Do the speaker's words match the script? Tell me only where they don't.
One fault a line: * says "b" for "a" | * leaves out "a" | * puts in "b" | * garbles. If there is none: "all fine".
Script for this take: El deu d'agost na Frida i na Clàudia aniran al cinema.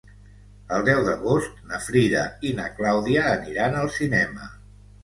all fine